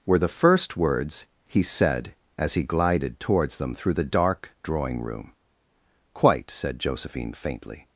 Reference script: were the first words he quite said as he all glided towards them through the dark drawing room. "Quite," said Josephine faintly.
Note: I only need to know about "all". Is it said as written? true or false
false